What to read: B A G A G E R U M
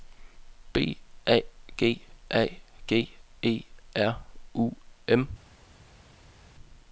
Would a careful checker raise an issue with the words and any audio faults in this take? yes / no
no